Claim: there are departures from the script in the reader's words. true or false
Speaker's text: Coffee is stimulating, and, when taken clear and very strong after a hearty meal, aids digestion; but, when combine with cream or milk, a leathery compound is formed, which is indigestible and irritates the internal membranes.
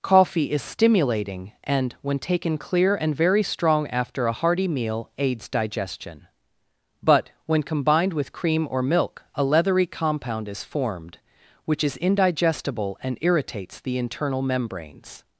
true